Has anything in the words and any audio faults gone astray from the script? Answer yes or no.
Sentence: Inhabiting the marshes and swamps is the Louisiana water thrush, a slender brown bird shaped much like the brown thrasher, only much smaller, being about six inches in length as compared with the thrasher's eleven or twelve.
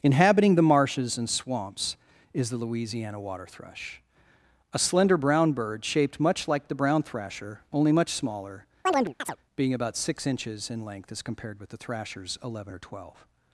yes